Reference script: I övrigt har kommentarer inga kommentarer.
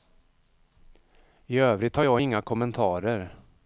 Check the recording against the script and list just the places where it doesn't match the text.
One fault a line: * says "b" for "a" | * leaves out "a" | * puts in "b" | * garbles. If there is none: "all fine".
* says "jag" for "kommentarer"